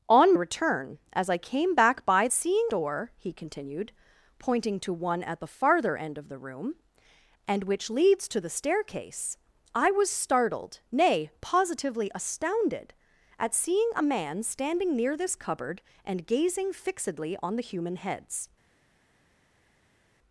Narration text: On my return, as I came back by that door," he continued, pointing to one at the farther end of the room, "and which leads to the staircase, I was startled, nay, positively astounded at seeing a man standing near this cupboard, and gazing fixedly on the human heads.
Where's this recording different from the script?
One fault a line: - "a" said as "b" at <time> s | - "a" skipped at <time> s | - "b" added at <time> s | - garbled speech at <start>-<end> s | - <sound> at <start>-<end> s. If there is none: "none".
- "my" skipped at 0.3 s
- "that" said as "seeing" at 2.3 s